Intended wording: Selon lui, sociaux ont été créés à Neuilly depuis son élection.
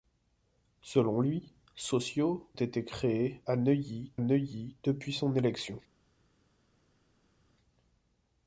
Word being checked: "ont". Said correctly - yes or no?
no